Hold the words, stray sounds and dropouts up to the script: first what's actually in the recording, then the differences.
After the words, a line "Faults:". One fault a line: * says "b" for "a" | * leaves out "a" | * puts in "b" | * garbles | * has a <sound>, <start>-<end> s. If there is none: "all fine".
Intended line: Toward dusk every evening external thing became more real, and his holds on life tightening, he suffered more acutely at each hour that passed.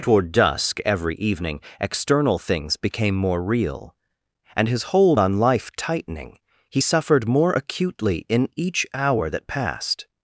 Toward dusk every evening external things became more real, and his hold on life tightening, he suffered more acutely in each hour that passed.
Faults:
* says "things" for "thing"
* says "hold" for "holds"
* says "in" for "at"